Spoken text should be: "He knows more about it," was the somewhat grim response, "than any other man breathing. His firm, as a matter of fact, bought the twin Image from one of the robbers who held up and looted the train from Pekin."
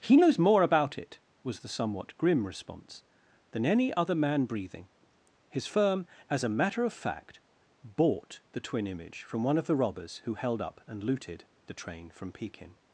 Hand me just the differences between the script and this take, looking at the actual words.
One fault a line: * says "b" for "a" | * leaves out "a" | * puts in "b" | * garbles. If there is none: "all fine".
all fine